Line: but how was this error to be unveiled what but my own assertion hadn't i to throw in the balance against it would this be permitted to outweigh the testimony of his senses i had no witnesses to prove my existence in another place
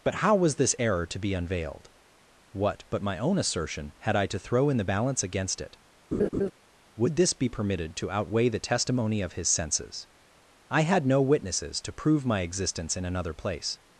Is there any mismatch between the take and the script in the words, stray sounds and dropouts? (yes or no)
yes